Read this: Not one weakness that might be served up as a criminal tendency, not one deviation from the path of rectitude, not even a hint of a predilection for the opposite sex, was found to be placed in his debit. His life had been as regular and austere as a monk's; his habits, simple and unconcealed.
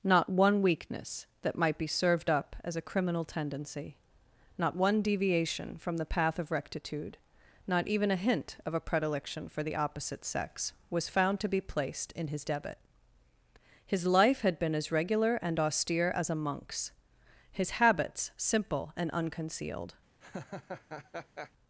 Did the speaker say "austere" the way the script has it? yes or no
yes